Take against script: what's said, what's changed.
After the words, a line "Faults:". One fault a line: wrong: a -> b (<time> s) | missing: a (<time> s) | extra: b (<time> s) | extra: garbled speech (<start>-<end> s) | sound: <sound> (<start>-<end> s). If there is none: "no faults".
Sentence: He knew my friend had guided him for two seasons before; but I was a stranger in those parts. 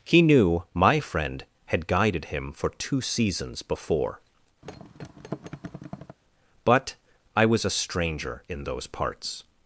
He knew my friend had guided him for two seasons before; but I was a stranger in those parts.
Faults:
sound: thud (4.6-6.2 s)